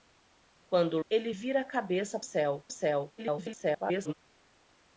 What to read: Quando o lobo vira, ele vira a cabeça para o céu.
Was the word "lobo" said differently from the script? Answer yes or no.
yes